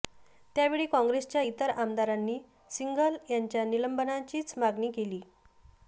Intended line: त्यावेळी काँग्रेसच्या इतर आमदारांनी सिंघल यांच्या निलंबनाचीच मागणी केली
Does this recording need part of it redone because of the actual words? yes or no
no